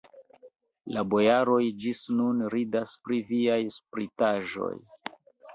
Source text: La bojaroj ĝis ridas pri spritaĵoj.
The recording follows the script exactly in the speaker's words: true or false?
false